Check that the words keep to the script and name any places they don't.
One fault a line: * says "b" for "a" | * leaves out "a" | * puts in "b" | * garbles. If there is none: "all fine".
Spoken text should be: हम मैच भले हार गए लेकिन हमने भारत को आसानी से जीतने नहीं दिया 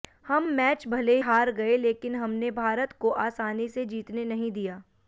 all fine